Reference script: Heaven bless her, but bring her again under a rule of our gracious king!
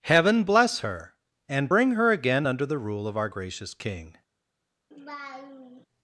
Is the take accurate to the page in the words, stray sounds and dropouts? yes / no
no